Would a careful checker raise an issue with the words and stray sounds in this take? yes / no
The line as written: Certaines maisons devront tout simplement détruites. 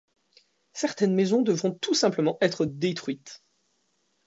yes